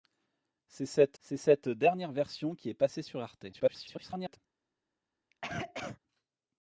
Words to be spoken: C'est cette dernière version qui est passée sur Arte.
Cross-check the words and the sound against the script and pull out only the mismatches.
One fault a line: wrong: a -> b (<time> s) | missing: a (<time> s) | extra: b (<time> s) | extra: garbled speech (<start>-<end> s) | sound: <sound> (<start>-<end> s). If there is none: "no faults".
extra: c'est cette (1.2 s)
extra: garbled speech (3.5-4.4 s)
sound: cough (5.3-6.0 s)